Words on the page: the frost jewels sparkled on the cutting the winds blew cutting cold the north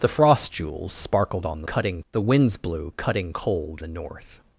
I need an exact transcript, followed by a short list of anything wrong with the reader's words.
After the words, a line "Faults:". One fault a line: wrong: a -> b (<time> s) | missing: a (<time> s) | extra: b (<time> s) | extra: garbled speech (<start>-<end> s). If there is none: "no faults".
the frost jewels sparkled on the cutting the winds blew cutting cold the north
Faults:
no faults